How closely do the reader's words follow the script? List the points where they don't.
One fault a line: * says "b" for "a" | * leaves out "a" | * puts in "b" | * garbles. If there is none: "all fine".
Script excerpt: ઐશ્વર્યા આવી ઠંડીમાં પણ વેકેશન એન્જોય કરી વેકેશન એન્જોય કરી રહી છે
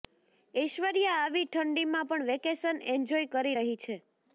* leaves out "વેકેશન એન્જોય કરી"